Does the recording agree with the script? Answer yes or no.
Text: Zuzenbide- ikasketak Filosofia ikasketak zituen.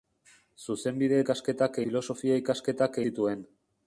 yes